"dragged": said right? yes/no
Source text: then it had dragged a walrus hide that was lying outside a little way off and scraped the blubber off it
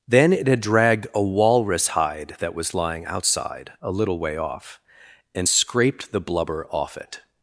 yes